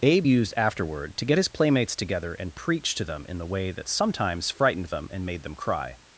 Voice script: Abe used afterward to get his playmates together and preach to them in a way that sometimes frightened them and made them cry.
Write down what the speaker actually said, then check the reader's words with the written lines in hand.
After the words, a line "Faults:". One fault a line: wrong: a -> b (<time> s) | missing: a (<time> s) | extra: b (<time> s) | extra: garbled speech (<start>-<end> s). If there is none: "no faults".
Abe used afterward to get his playmates together and preach to them in the way that sometimes frightened them and made them cry.
Faults:
wrong: a -> the (3.4 s)